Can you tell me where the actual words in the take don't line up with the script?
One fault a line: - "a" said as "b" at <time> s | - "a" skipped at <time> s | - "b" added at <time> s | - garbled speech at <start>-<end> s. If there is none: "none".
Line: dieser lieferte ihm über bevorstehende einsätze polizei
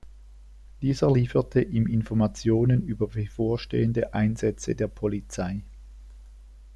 - "informationen" added at 1.9 s
- "der" added at 4.7 s